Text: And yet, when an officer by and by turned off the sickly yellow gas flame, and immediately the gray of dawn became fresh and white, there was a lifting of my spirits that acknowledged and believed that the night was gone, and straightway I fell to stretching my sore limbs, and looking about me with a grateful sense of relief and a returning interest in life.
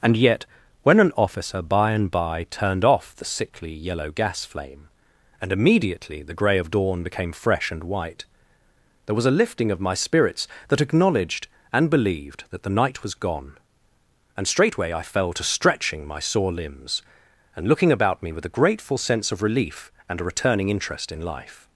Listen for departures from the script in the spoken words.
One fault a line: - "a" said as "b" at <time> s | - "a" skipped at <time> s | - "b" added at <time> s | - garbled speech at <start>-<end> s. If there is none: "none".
none